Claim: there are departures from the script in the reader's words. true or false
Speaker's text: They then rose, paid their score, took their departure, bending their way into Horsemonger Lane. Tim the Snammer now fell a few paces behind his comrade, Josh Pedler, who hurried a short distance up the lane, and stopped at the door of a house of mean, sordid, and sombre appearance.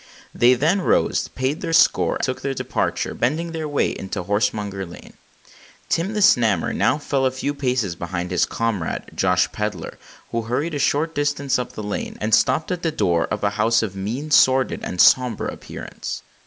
false